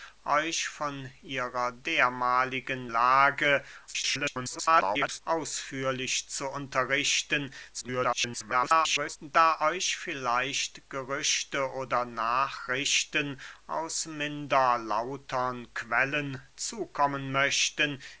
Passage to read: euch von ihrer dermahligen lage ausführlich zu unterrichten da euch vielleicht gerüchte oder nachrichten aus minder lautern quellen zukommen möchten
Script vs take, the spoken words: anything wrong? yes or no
yes